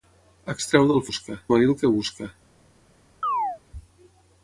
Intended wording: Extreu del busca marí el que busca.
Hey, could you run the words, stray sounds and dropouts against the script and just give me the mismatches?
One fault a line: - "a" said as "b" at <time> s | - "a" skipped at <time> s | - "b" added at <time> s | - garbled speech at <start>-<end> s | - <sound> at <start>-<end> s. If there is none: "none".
- chirp at 3.2-3.6 s